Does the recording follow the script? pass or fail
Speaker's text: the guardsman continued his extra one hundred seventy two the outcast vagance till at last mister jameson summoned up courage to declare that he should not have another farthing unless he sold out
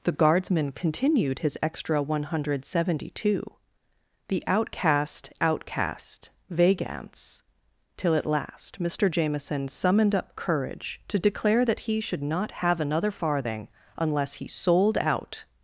fail